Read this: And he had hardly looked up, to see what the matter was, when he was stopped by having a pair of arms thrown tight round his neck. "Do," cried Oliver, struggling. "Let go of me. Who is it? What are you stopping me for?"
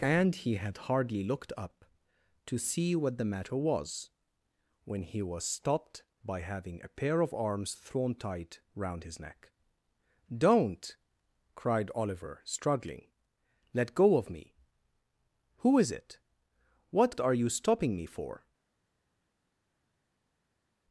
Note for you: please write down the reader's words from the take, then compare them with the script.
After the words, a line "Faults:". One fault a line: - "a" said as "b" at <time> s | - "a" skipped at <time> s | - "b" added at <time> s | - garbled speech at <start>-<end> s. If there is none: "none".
And he had hardly looked up, to see what the matter was, when he was stopped by having a pair of arms thrown tight round his neck. "Don't," cried Oliver, struggling. "Let go of me. Who is it? What are you stopping me for?"
Faults:
- "Do" said as "Don't" at 10.3 s